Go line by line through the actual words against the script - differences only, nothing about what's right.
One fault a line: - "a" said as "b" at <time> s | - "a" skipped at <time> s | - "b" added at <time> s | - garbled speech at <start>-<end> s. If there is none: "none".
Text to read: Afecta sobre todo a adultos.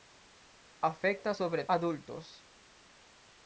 - "todo a" skipped at 1.6 s